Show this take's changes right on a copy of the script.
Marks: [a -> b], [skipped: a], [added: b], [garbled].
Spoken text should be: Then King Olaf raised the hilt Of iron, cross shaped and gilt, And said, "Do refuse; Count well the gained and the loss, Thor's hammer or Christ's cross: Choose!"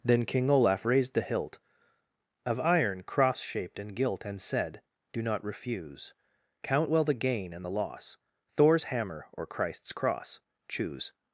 Then King Olaf raised the hilt Of iron, cross shaped and gilt, And said, "Do [added: not] refuse; Count well the [gained -> gain] and the loss, Thor's hammer or Christ's cross: Choose!"